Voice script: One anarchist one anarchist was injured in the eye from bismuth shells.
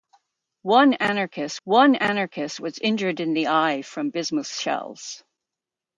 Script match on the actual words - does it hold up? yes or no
yes